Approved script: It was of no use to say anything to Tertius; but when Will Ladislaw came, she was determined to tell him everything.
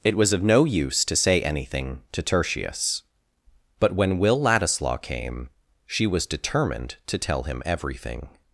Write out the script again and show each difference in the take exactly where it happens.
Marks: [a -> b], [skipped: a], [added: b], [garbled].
It was of no use to say anything to Tertius; but when Will Ladislaw came, she was determined to tell him everything.